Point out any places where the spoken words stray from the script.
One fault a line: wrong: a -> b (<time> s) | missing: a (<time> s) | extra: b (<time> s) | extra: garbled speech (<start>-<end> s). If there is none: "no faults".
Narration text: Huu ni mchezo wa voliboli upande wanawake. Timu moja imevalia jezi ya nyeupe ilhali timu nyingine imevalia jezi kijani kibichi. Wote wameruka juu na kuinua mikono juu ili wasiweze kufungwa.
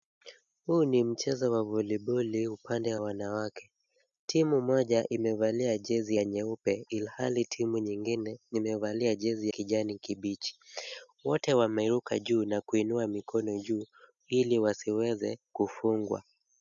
no faults